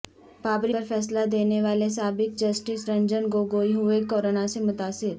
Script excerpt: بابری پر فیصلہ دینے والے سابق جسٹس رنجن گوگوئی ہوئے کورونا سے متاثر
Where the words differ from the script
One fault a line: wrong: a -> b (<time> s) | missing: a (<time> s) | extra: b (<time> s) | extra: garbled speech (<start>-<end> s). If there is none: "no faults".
no faults